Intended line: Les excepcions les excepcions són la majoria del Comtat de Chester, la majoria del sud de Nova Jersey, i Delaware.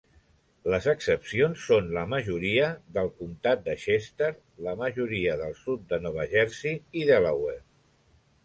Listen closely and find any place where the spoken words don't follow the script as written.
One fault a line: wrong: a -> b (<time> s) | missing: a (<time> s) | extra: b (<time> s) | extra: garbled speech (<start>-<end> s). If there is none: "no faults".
missing: les excepcions (1.6 s)